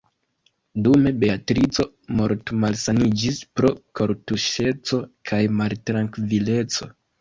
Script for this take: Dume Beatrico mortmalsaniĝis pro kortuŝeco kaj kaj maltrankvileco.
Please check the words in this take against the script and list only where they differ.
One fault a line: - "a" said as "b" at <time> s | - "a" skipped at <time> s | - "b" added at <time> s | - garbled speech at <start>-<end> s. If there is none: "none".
- "kaj" skipped at 5.4 s